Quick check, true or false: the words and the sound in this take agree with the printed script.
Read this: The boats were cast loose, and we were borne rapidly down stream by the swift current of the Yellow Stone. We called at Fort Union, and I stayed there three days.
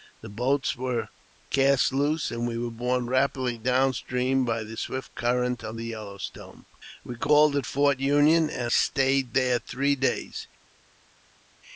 false